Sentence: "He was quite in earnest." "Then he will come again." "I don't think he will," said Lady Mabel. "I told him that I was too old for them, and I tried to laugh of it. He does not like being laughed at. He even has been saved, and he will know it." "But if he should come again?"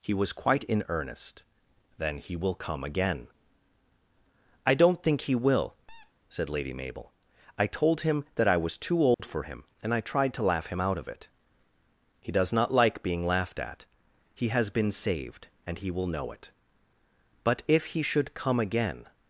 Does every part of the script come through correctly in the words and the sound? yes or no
no